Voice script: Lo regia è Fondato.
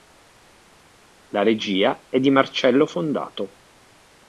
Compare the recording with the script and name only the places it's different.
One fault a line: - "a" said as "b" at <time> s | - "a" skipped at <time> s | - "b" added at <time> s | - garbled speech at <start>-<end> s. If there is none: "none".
- "Lo" said as "La" at 1.3 s
- "di Marcello" added at 2.2 s